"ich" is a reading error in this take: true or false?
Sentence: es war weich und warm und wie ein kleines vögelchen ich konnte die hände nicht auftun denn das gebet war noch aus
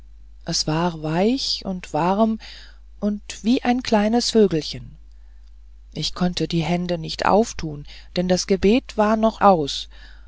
false